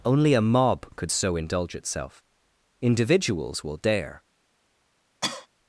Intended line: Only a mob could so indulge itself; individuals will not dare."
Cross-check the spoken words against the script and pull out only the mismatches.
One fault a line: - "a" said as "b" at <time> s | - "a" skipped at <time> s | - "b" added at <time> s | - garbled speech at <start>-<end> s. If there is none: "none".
- "not" skipped at 3.8 s